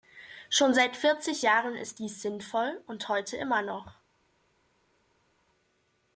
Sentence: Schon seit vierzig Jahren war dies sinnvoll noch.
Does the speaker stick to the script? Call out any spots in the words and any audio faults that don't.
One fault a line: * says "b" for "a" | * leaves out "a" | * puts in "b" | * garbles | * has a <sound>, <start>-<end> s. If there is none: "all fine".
* says "ist" for "war"
* puts in "und heute immer"